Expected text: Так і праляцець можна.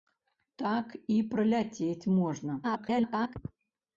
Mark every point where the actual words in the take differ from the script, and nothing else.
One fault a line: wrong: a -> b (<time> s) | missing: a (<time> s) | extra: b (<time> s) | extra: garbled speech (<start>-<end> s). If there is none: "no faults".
extra: garbled speech (2.6-3.4 s)